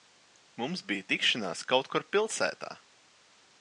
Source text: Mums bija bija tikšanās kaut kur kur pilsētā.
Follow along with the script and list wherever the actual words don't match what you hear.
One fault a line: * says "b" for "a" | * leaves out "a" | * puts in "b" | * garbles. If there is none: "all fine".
* leaves out "bija"
* leaves out "kur"